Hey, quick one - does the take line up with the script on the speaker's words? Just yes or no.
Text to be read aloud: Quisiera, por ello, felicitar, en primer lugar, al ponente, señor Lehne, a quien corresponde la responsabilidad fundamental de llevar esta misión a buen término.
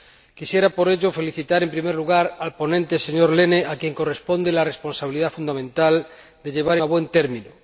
no